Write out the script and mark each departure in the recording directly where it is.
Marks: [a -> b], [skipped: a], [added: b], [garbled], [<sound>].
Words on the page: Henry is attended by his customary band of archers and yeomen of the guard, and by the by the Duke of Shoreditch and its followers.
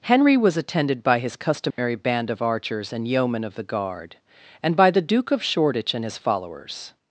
Henry [is -> was] attended by his customary [dropout] band of archers and yeomen of the guard, and by the [skipped: by the] Duke of Shoreditch and [its -> his] followers.